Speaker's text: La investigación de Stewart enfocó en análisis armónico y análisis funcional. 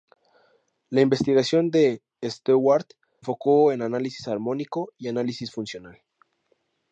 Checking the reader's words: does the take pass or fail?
pass